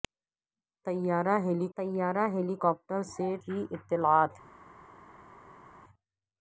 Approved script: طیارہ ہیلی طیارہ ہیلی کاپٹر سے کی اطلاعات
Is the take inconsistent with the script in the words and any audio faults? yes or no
no